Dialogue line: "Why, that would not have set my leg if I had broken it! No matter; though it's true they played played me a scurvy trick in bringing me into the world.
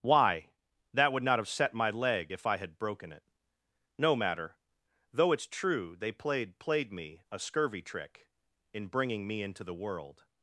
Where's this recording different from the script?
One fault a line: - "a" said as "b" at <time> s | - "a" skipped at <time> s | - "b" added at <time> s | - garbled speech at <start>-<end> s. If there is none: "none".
none